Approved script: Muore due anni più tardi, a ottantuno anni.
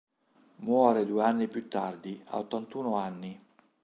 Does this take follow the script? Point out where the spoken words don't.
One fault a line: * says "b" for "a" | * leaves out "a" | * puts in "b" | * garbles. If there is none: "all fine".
all fine